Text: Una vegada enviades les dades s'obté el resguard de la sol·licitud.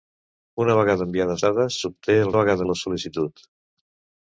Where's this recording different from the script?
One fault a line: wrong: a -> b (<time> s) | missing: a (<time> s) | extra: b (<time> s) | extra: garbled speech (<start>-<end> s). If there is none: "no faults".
missing: les (1.4 s)
wrong: resguard -> vegada (2.4 s)